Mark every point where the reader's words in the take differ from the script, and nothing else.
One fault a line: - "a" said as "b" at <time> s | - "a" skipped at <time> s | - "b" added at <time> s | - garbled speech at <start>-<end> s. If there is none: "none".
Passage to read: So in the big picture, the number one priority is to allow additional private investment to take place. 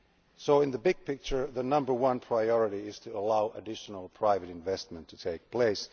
none